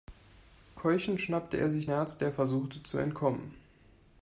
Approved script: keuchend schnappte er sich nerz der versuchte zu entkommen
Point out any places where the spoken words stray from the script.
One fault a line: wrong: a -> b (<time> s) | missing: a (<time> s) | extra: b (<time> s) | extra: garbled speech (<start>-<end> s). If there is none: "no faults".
no faults